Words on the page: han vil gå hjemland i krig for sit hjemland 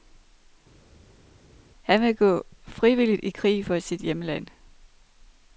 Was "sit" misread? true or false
false